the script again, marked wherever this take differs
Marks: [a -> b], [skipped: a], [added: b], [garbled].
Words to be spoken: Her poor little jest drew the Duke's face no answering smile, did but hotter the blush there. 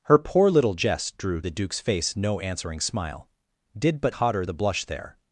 Her poor little jest drew the Duke's face no answering smile, did but hotter the blush there.